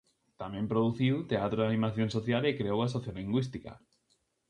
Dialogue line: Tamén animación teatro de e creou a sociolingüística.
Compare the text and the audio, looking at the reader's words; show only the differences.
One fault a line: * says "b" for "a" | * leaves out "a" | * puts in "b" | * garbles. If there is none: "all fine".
* says "produciu" for "animación"
* puts in "animación social"